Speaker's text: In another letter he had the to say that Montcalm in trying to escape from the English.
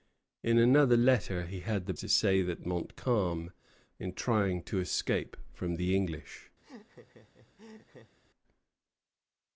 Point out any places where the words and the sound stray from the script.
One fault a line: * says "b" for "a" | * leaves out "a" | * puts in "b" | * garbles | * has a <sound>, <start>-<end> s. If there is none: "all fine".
* has a laugh, 6.6-8.2 s